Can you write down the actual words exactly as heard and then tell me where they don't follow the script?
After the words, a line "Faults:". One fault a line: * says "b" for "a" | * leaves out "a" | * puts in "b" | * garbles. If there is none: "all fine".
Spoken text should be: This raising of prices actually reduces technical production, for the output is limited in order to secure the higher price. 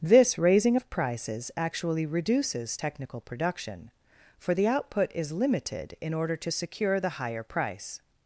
This raising of prices actually reduces technical production, for the output is limited in order to secure the higher price.
Faults:
all fine